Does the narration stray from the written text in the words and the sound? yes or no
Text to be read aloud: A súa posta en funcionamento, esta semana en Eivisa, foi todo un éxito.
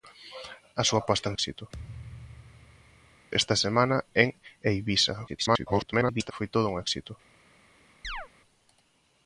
yes